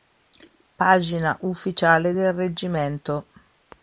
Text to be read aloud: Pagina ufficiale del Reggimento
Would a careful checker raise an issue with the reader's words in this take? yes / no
no